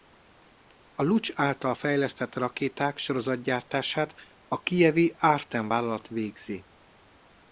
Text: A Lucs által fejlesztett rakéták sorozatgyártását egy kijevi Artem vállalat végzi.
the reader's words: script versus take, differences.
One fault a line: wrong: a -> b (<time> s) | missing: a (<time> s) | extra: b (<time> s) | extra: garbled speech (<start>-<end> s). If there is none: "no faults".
wrong: egy -> a (4.5 s)